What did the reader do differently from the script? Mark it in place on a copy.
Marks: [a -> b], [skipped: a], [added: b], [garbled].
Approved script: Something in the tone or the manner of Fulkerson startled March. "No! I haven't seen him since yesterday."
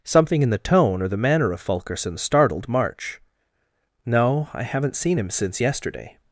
Something in the tone or the manner of Fulkerson startled March. "No! I haven't seen him since yesterday."